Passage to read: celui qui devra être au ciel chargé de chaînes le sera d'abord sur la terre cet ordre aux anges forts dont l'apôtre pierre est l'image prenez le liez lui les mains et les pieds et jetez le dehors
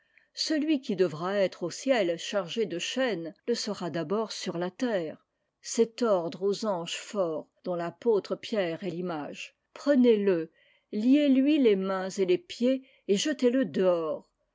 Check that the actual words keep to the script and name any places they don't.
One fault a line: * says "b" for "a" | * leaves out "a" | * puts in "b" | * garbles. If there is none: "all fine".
all fine